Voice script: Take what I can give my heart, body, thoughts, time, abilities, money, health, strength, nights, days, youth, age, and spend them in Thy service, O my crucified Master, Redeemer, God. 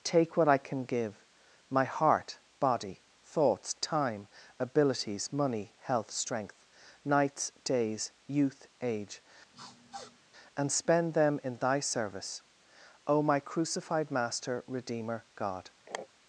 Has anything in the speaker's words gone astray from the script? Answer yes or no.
no